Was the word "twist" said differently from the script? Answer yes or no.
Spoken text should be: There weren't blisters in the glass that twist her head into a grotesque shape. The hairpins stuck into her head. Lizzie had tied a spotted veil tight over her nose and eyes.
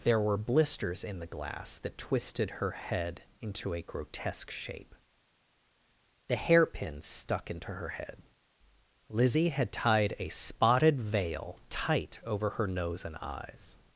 yes